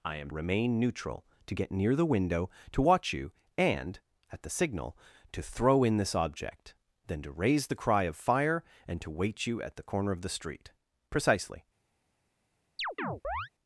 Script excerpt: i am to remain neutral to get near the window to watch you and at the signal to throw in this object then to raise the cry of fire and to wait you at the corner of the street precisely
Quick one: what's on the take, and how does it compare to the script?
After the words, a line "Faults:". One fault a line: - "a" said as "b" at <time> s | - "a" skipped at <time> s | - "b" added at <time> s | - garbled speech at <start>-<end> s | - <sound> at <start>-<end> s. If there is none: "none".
i am remain neutral to get near the window to watch you and at the signal to throw in this object then to raise the cry of fire and to wait you at the corner of the street precisely
Faults:
- "to" skipped at 0.3 s
- chirp at 12.8-13.5 s